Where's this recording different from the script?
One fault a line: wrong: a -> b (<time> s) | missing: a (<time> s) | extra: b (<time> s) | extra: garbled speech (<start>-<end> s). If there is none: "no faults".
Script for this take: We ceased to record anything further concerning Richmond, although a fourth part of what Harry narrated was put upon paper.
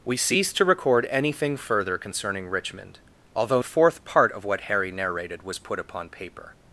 no faults